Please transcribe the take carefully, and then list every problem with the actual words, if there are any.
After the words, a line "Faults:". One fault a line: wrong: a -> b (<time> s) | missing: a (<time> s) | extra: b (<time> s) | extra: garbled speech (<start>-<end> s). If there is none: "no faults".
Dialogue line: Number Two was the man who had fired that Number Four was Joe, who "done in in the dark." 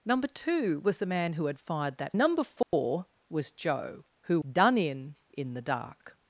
Number Two was the man who had fired that Number Four was Joe, who "done in in the dark."
Faults:
no faults